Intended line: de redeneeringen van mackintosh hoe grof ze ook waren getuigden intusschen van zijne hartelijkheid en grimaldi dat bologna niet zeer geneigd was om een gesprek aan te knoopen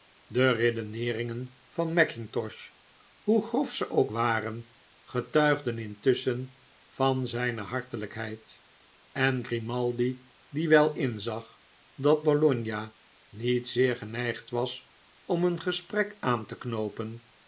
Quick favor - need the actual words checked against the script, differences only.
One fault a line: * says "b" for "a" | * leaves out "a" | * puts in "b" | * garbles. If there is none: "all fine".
* puts in "die wel inzag"